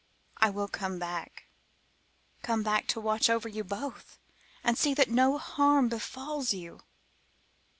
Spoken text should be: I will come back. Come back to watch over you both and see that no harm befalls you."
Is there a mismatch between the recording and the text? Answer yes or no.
no